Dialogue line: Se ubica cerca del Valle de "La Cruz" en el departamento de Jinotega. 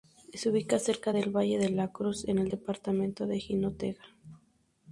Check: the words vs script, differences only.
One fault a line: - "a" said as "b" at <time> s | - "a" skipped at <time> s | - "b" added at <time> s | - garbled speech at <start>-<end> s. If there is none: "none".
none